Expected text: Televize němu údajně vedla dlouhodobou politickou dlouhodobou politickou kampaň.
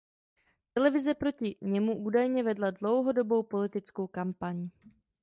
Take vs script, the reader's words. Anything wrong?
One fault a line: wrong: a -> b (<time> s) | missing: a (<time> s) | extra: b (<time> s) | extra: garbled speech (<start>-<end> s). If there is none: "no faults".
extra: proti (1.1 s)
missing: dlouhodobou politickou (4.1 s)